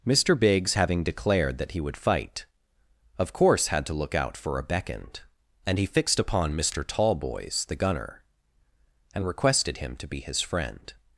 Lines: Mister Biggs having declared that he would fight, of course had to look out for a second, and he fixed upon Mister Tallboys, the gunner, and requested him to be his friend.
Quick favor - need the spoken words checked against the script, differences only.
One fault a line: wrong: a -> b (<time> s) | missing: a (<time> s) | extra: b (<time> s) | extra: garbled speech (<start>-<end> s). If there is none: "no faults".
wrong: second -> beckoned (4.6 s)